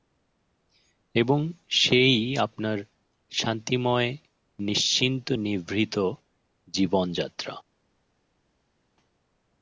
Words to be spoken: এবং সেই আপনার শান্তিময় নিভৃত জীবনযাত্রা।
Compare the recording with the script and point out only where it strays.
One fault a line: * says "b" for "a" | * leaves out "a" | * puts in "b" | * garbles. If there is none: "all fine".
* puts in "নিশ্চিন্ত"